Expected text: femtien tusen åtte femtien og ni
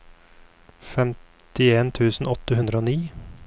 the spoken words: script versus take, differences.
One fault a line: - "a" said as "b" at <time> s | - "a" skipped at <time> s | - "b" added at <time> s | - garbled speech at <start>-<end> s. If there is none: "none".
- "femtien" said as "hundre" at 2.6 s